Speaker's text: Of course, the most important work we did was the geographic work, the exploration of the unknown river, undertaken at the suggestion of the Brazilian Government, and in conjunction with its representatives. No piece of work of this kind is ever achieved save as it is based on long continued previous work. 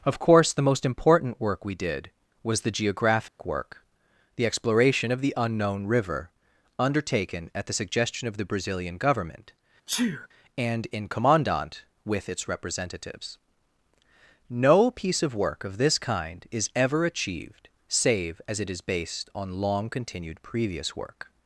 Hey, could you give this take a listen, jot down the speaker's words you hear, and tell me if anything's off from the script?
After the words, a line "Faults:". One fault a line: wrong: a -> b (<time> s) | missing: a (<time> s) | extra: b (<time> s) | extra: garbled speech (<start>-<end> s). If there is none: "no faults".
Of course, the most important work we did was the geographic work, the exploration of the unknown river, undertaken at the suggestion of the Brazilian Government, and in commandant with its representatives. No piece of work of this kind is ever achieved save as it is based on long continued previous work.
Faults:
wrong: conjunction -> commandant (11.1 s)